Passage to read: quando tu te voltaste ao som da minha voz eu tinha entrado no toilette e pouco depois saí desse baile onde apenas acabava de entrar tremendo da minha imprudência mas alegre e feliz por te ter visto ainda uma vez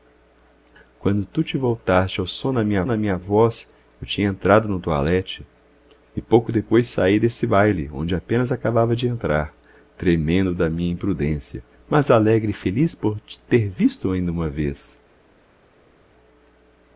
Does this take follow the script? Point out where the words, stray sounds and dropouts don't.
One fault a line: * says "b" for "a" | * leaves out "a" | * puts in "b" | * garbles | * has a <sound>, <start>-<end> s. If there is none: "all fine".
* puts in "da minha"